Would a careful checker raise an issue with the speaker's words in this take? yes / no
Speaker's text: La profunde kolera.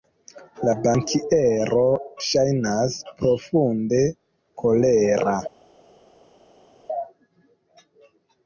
yes